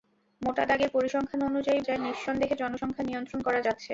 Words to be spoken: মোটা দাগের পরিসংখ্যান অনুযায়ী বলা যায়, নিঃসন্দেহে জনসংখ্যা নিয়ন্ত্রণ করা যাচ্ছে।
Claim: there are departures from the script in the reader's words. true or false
true